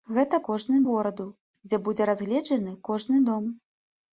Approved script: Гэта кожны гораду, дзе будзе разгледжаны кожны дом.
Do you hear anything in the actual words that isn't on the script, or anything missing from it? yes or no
no